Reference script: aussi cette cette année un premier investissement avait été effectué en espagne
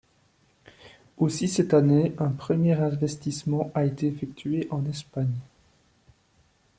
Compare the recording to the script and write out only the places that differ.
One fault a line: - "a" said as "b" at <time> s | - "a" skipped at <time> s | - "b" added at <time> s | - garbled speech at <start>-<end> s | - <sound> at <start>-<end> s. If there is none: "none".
- "cette" skipped at 1.8 s
- "avait" said as "a" at 3.8 s